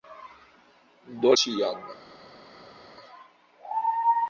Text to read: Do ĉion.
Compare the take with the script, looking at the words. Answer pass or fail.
pass